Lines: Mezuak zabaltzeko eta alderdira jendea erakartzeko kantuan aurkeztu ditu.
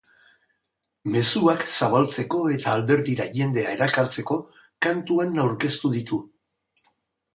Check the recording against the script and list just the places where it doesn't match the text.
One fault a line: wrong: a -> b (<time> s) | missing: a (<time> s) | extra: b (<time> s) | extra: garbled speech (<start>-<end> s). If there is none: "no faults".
no faults